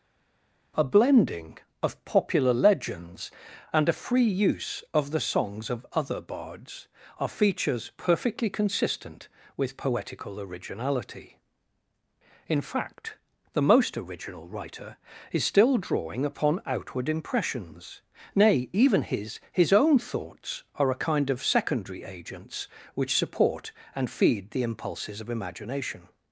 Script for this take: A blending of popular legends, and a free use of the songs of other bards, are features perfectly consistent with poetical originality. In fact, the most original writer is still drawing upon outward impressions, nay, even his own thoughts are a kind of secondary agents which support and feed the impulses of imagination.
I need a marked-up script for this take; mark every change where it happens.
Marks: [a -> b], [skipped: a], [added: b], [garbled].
A blending of popular legends, and a free use of the songs of other bards, are features perfectly consistent with poetical originality. In fact, the most original writer is still drawing upon outward impressions, nay, even his [added: his] own thoughts are a kind of secondary agents which support and feed the impulses of imagination.